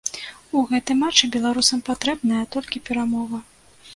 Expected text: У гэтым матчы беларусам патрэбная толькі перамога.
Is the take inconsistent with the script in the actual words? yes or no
no